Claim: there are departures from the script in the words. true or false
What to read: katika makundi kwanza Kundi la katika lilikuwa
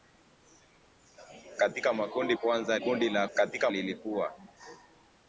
false